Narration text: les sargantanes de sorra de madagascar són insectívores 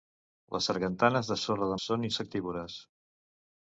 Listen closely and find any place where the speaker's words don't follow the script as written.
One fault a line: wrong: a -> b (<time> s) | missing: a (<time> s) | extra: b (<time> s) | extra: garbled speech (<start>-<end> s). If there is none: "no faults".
missing: madagascar (1.8 s)